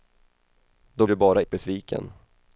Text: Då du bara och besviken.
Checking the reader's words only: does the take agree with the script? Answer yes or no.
yes